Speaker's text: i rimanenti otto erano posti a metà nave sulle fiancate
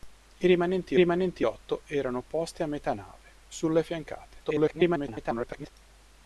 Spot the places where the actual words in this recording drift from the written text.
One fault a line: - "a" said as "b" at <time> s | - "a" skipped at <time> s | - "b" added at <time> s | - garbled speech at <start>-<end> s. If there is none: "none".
- "rimanenti" added at 1.0 s
- garbled speech at 4.4-5.7 s